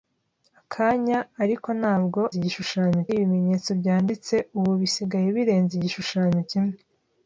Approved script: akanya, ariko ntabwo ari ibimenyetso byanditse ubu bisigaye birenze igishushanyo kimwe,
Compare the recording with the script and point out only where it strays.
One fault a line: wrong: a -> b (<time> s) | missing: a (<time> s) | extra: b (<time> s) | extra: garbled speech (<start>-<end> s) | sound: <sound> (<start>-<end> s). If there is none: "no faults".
wrong: ari -> igishushanyo (2.4 s)